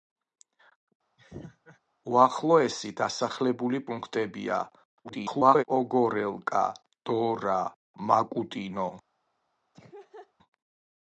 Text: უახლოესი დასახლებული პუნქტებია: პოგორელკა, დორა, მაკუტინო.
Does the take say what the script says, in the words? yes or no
no